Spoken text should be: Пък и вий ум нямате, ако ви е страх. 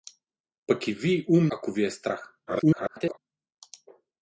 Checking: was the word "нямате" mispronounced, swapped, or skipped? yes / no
yes